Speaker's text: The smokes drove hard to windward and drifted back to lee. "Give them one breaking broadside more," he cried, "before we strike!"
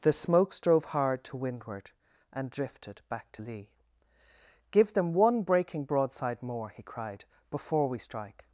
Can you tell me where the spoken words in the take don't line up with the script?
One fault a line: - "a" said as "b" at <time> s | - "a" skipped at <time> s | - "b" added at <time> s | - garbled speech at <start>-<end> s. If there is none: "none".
none